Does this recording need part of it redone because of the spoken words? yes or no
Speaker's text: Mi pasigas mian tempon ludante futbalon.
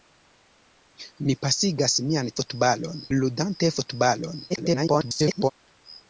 yes